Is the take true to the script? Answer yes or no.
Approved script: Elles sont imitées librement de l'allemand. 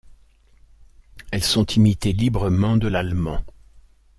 yes